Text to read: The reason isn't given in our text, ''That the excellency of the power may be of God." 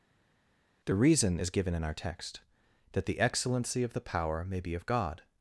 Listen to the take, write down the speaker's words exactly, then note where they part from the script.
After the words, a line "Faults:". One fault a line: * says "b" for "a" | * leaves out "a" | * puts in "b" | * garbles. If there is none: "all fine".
The reason is given in our text, ''That the excellency of the power may be of God."
Faults:
* says "is" for "isn't"